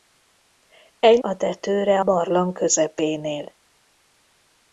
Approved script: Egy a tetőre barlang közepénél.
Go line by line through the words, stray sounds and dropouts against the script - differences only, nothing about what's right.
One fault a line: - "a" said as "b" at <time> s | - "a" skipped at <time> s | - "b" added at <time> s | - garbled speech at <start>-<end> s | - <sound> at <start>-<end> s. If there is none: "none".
none